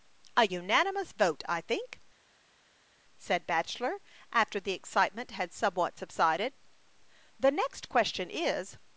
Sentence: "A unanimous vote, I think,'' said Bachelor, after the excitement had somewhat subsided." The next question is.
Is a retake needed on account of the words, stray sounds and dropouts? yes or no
no